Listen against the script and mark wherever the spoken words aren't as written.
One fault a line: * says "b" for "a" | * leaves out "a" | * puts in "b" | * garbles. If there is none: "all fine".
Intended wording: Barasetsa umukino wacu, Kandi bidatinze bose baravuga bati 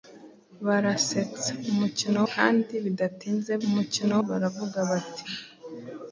* leaves out "wacu"
* says "umukino" for "bose"